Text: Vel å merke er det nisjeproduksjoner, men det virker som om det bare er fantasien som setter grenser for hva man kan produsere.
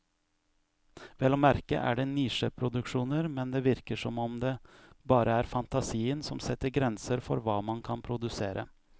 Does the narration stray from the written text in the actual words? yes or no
no